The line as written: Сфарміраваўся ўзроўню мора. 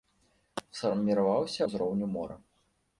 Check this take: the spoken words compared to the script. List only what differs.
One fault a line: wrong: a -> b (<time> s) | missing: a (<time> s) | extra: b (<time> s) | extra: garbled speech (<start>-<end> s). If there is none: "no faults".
no faults